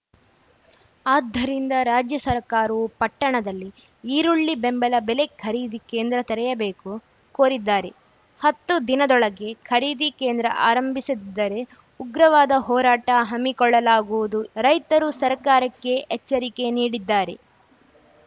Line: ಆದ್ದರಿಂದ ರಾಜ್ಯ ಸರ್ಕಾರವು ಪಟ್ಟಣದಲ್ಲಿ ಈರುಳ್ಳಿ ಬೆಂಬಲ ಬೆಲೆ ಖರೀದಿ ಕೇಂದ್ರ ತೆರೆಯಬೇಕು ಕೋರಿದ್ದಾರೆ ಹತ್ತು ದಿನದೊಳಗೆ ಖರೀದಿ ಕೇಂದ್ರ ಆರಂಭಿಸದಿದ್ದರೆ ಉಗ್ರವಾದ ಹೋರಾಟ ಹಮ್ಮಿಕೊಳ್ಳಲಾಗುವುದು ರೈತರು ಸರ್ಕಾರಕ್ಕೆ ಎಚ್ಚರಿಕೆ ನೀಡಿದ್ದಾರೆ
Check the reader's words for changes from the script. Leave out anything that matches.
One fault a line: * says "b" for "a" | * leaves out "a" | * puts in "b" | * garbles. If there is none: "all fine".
all fine